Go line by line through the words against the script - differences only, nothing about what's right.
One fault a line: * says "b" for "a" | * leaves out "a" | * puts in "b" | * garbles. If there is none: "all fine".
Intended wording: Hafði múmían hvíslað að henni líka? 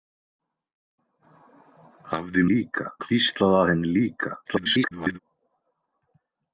* says "líka" for "múmían"
* garbles